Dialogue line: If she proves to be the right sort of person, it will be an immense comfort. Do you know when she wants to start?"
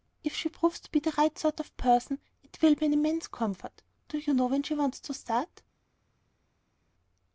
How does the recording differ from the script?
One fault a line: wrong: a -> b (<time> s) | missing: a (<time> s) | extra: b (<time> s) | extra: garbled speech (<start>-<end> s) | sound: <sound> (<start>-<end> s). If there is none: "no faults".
no faults